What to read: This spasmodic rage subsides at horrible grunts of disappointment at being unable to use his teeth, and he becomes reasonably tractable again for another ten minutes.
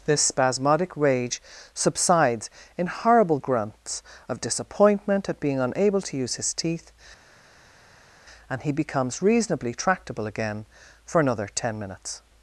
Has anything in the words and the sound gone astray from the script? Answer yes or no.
yes